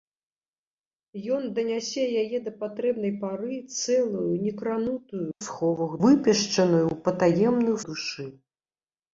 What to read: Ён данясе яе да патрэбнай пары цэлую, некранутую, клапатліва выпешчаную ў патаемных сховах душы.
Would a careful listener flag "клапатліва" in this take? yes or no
yes